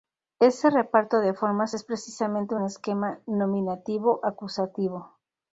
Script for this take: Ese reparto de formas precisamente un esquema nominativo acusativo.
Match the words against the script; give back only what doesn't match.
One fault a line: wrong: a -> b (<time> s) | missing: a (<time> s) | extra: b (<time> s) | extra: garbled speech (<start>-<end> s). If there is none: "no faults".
extra: es (1.7 s)